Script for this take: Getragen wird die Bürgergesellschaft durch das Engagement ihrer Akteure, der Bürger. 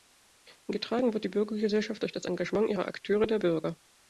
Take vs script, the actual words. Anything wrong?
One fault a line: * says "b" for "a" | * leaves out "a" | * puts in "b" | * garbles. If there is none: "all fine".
all fine